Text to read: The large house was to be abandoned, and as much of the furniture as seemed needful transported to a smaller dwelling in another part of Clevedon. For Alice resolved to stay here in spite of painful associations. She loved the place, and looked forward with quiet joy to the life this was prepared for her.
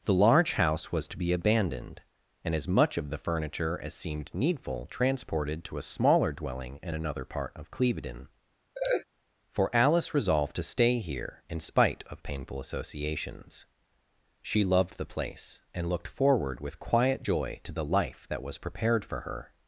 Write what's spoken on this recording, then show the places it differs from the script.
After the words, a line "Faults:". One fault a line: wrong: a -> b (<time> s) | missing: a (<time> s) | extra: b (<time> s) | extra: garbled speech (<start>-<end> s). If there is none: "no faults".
The large house was to be abandoned, and as much of the furniture as seemed needful transported to a smaller dwelling in another part of Clevedon. For Alice resolved to stay here in spite of painful associations. She loved the place, and looked forward with quiet joy to the life that was prepared for her.
Faults:
wrong: this -> that (18.3 s)